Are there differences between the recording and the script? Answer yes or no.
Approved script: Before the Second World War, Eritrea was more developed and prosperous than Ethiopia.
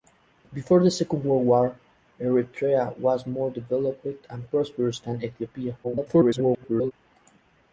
yes